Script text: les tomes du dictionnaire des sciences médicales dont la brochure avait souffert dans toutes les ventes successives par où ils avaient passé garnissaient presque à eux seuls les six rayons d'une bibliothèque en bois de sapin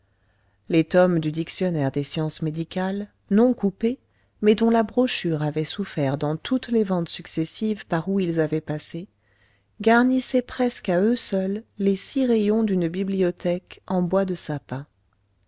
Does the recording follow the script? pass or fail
fail